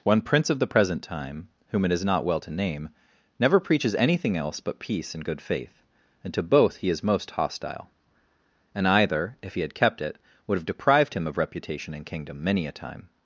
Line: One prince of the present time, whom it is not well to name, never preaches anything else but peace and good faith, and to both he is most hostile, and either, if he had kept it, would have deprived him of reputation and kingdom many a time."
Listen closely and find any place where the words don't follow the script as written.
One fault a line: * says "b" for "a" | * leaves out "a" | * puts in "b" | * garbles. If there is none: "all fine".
all fine